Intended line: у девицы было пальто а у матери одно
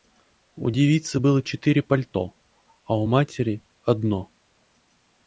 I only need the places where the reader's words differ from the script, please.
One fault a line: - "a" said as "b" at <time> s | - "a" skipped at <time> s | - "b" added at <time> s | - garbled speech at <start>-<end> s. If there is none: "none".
- "четыре" added at 1.4 s